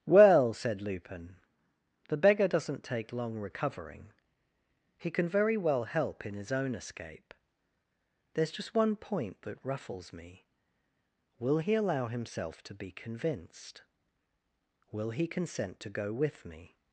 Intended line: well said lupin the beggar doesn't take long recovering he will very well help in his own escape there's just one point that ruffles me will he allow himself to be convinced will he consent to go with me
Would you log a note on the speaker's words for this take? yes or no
yes